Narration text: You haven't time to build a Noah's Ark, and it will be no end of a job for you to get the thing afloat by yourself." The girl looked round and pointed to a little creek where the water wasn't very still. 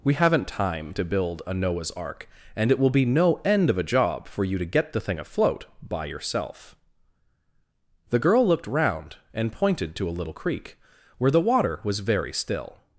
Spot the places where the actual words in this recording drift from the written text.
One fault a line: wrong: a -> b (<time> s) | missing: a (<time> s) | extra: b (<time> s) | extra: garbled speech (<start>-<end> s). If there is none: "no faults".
wrong: You -> We (0.0 s)
wrong: wasn't -> was (11.8 s)